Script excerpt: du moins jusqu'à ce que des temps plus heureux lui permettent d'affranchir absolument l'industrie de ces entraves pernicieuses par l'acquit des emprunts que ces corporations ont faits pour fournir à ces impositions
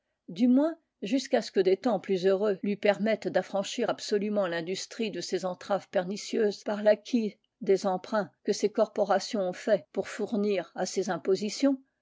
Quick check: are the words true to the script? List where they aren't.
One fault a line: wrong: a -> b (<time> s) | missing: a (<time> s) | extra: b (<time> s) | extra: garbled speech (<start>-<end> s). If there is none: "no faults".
no faults